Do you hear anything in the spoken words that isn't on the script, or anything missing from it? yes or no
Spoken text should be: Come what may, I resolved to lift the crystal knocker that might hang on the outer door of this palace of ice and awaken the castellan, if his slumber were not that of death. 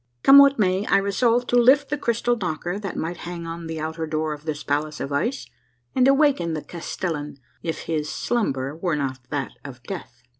no